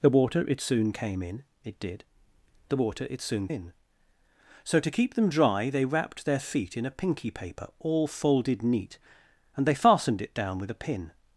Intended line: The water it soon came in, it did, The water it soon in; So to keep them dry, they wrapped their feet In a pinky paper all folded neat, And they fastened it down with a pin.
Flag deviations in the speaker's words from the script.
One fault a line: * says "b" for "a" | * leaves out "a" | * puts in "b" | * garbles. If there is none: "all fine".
all fine